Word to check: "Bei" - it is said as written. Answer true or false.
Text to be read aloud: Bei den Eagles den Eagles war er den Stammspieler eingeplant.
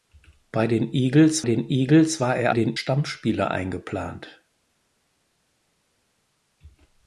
true